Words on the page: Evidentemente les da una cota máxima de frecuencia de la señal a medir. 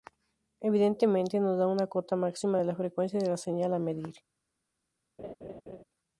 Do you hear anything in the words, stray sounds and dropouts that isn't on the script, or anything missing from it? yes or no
yes